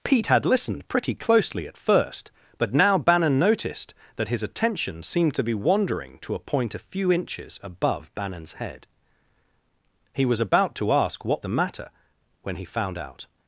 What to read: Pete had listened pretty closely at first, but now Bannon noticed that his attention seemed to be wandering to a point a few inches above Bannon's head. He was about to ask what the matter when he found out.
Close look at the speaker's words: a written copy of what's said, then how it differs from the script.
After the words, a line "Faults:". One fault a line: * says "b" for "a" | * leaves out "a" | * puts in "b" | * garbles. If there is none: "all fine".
Pete had listened pretty closely at first, but now Bannon noticed that his attention seemed to be wandering to a point a few inches above Bannon's head. He was about to ask what the matter when he found out.
Faults:
all fine